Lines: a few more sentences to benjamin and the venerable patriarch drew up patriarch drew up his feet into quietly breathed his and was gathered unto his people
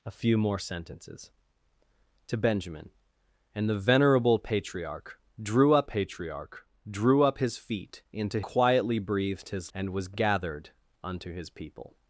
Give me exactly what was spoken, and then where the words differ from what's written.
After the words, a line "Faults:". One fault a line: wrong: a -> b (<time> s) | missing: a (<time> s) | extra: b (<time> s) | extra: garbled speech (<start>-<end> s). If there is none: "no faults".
a few more sentences to benjamin and the venerable patriarch drew up patriarch drew up his feet into quietly breathed his and was gathered unto his people
Faults:
no faults